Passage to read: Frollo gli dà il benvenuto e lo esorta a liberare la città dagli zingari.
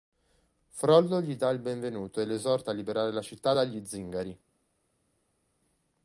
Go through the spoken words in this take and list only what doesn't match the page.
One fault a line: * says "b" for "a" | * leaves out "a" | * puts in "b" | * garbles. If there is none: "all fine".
all fine